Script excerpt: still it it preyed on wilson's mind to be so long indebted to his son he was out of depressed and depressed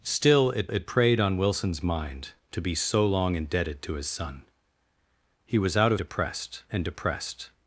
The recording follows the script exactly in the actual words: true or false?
true